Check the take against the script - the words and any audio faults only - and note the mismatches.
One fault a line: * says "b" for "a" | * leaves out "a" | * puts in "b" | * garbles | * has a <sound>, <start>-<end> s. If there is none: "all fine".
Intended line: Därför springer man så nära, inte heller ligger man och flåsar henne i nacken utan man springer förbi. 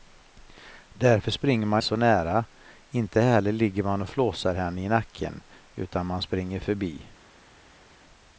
all fine